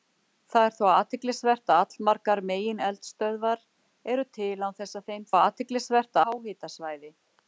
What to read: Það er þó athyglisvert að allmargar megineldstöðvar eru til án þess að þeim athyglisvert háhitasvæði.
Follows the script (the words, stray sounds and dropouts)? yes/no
yes